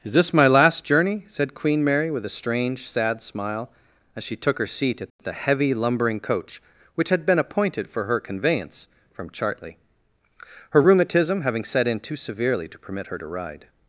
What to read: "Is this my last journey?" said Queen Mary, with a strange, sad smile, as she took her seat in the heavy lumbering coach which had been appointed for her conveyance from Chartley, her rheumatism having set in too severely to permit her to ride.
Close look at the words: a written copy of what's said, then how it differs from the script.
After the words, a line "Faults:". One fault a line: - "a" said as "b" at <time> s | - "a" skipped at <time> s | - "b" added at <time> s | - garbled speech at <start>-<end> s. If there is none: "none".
"Is this my last journey?" said Queen Mary, with a strange, sad smile, as she took her seat at the heavy lumbering coach which had been appointed for her conveyance from Chartley, her rheumatism having set in too severely to permit her to ride.
Faults:
- "in" said as "at" at 5.0 s